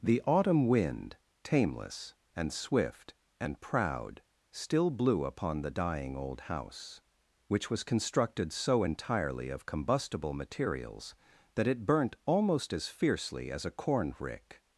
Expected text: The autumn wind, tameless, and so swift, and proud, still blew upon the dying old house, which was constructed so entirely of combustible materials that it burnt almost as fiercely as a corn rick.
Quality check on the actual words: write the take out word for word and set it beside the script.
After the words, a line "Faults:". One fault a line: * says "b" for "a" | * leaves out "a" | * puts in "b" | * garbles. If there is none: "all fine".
The autumn wind, tameless, and swift, and proud, still blew upon the dying old house, which was constructed so entirely of combustible materials that it burnt almost as fiercely as a corn rick.
Faults:
* leaves out "so"